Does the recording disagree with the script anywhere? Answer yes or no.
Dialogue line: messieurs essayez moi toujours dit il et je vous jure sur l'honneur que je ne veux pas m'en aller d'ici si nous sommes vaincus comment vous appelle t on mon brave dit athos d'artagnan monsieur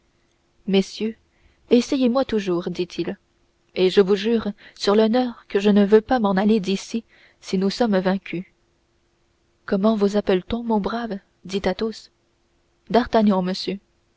no